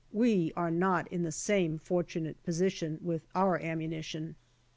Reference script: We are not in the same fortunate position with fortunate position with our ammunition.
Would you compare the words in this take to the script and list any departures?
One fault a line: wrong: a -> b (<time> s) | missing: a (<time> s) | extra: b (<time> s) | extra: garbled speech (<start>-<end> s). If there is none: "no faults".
missing: fortunate position with (3.3 s)